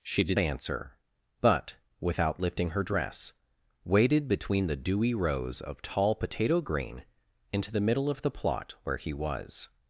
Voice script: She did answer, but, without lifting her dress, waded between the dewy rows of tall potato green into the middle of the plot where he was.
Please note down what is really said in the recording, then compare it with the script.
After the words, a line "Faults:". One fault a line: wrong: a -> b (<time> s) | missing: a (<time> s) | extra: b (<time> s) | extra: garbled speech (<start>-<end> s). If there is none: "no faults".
She did answer, but, without lifting her dress, waded between the dewy rows of tall potato green into the middle of the plot where he was.
Faults:
no faults